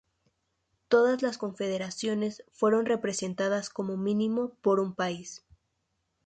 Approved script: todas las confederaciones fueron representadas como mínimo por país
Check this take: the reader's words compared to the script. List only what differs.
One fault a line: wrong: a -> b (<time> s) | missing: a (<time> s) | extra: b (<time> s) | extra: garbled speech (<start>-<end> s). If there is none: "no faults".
extra: un (4.8 s)